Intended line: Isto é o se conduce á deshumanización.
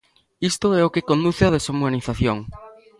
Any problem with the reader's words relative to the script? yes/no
yes